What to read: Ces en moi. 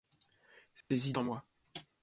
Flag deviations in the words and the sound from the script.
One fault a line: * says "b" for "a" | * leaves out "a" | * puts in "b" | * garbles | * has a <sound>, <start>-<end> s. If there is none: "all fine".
* has a dropout, 0.8-0.9 s